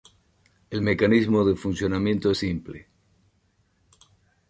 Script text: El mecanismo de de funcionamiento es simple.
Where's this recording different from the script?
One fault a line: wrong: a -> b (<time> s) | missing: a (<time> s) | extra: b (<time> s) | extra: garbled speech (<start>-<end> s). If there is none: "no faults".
missing: de (1.6 s)